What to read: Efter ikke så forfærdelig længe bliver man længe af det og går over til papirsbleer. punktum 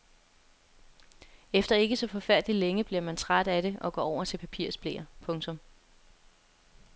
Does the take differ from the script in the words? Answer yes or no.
yes